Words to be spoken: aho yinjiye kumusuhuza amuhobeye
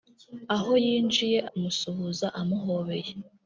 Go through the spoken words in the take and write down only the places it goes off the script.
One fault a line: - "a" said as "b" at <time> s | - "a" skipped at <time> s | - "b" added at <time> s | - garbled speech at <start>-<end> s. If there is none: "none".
none